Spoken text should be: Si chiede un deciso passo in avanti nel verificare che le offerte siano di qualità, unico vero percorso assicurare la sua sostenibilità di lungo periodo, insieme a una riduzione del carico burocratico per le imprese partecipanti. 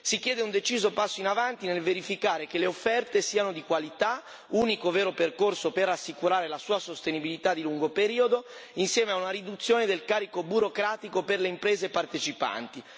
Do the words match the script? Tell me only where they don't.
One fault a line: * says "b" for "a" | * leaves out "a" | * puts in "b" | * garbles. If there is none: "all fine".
* puts in "per"